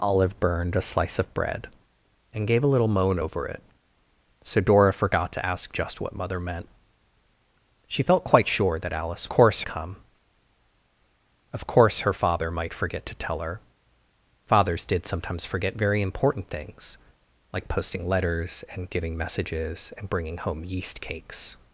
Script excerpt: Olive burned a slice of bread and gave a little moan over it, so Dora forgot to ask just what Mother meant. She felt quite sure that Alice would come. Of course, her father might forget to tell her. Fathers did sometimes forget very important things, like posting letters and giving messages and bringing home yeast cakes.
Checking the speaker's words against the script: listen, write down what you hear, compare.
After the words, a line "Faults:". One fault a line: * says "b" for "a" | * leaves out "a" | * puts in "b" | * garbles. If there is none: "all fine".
Olive burned a slice of bread and gave a little moan over it, so Dora forgot to ask just what Mother meant. She felt quite sure that Alice course come. Of course, her father might forget to tell her. Fathers did sometimes forget very important things, like posting letters and giving messages and bringing home yeast cakes.
Faults:
* says "course" for "would"